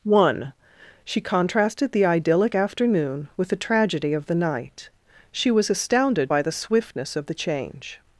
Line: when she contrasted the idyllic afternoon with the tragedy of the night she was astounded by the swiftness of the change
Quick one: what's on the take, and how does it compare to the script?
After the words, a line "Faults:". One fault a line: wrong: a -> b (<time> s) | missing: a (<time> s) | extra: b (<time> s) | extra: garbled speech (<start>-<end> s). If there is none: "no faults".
one she contrasted the idyllic afternoon with the tragedy of the night she was astounded by the swiftness of the change
Faults:
wrong: when -> one (0.0 s)